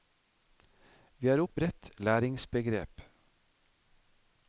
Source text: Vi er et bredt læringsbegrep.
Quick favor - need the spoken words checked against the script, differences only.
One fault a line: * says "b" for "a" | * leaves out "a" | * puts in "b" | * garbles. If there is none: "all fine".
all fine